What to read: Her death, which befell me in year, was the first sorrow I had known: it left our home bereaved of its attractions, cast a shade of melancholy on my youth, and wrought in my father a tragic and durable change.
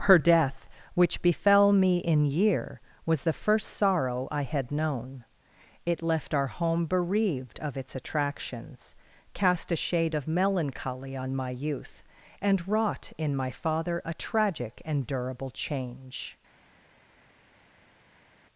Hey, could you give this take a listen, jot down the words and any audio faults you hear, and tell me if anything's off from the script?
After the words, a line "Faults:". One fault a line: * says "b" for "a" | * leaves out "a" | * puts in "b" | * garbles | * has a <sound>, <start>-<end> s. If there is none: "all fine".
Her death, which befell me in year, was the first sorrow I had known: it left our home bereaved of its attractions, cast a shade of melancholy on my youth, and wrought in my father a tragic and durable change.
Faults:
all fine